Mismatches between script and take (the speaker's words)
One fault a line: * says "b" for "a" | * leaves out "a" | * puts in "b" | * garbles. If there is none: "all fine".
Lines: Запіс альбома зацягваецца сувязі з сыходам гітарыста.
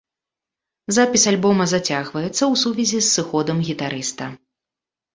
* puts in "ў"